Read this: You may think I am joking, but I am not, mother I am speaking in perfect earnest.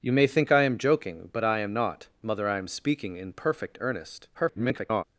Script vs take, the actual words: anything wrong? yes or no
yes